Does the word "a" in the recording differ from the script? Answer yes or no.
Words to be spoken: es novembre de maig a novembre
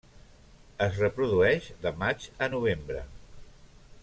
no